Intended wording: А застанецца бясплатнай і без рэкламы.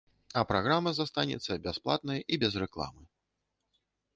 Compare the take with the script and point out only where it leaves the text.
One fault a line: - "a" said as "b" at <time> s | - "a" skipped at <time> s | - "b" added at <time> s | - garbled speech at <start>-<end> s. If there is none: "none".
- "праграма" added at 0.5 s